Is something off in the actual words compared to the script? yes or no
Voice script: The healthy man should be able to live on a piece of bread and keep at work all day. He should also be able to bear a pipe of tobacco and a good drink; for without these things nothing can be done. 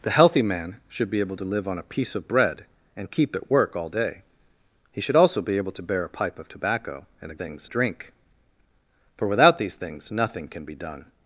yes